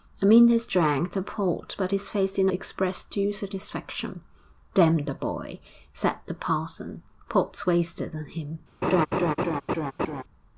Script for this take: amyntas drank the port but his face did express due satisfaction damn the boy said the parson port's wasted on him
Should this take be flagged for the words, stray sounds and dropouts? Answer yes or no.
yes